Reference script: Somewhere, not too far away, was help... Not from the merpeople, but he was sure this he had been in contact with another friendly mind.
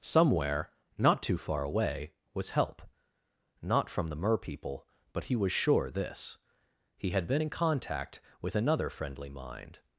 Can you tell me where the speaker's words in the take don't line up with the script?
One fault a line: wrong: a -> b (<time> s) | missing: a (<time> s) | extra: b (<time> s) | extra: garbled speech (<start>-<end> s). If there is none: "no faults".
no faults